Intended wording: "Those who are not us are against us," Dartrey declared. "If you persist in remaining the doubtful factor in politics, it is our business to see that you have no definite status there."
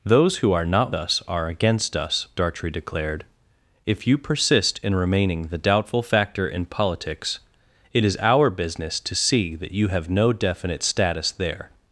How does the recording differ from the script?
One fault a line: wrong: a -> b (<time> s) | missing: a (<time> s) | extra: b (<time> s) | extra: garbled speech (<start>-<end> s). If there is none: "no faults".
no faults